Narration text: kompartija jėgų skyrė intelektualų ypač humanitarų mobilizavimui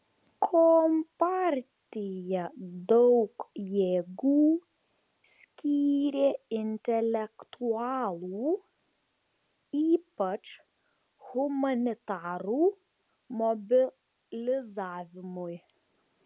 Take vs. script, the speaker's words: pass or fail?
fail